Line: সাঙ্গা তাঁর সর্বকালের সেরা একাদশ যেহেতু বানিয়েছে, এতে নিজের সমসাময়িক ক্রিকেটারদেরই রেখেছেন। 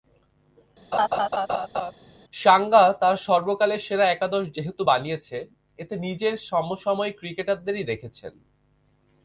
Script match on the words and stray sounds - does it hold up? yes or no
no